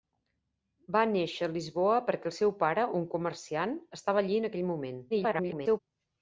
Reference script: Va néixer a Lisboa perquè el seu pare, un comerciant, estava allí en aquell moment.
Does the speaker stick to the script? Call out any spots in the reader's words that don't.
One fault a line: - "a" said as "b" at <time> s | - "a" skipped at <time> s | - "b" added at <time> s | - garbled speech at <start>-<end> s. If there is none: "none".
- garbled speech at 5.1-5.8 s